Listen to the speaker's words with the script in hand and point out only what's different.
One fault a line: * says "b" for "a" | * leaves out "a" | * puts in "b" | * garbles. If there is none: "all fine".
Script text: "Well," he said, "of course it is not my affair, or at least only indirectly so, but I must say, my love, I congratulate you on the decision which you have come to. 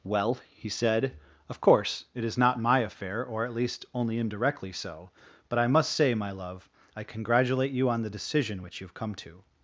all fine